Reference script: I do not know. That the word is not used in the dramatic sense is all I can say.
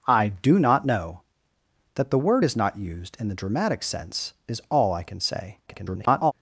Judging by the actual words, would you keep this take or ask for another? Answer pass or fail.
fail